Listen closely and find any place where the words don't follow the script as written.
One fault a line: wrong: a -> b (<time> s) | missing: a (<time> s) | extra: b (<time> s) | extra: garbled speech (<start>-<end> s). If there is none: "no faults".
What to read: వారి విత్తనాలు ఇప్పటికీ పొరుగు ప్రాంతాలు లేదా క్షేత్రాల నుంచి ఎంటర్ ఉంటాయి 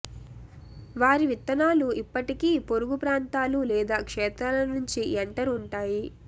no faults